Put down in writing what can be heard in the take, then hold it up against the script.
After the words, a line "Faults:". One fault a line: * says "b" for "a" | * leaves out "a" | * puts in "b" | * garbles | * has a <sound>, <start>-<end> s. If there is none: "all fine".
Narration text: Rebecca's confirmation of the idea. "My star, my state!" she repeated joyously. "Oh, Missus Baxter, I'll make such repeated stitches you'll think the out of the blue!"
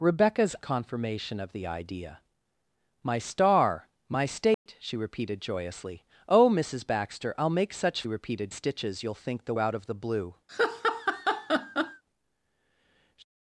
Rebecca's confirmation of the idea. "My star, my state!" she repeated joyously. "Oh, Missus Baxter, I'll make such repeated stitches you'll think the out of the blue!"
Faults:
* has a dropout, 4.5-4.7 s
* has a laugh, 10.5-12.0 s